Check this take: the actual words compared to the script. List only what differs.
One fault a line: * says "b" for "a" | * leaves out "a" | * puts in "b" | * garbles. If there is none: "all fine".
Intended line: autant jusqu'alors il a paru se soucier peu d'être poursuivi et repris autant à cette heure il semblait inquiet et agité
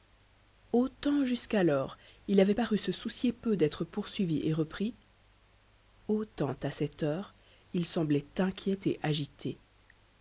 * says "avait" for "a"